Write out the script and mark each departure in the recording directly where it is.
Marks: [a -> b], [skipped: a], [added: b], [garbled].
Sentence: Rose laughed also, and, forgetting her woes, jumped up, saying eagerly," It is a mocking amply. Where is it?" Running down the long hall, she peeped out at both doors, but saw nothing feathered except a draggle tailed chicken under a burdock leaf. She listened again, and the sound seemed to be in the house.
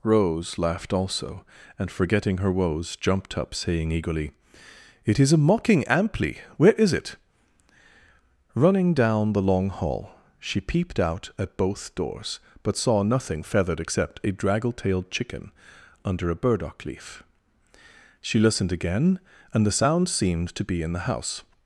Rose laughed also, and, forgetting her woes, jumped up, saying eagerly," It is a mocking amply. Where is it?" Running down the long hall, she peeped out at both doors, but saw nothing feathered except a draggle tailed chicken under a burdock leaf. She listened again, and the sound seemed to be in the house.